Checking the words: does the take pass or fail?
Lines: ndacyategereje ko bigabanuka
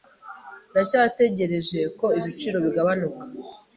fail